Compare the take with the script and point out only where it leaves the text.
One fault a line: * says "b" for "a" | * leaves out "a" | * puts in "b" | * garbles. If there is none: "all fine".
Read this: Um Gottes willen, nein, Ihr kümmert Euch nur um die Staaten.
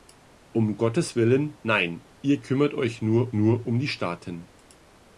* puts in "nur"